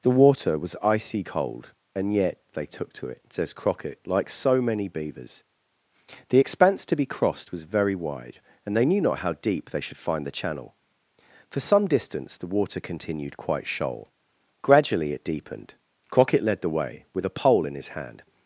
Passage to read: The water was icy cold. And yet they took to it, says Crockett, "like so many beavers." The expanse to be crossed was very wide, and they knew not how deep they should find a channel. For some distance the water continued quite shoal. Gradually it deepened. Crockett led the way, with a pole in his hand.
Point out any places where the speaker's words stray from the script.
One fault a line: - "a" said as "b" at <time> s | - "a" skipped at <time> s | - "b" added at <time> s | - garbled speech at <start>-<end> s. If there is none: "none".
- "a" said as "the" at 10.3 s